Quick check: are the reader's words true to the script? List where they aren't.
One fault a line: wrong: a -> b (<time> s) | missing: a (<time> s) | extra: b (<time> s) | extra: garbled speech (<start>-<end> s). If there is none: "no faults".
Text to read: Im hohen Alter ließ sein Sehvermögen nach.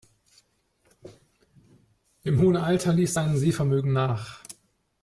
no faults